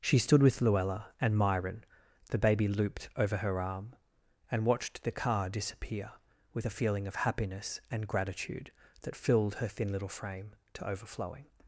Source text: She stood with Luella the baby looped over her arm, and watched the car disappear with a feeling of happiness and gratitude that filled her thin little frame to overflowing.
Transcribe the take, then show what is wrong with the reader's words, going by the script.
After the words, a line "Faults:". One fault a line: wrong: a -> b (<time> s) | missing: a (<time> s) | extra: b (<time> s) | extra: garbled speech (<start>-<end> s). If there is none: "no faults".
She stood with Luella and Myron, the baby looped over her arm, and watched the car disappear with a feeling of happiness and gratitude that filled her thin little frame to overflowing.
Faults:
extra: and Myron (1.2 s)